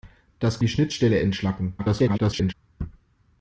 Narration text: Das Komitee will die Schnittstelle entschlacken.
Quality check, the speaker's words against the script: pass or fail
fail